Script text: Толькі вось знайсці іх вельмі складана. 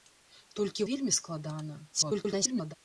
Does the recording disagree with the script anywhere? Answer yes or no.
yes